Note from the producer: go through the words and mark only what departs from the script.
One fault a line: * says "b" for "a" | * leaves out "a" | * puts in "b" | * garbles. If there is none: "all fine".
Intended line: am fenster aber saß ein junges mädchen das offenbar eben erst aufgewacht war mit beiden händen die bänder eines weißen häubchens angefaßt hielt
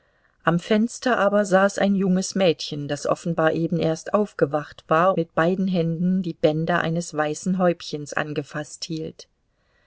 all fine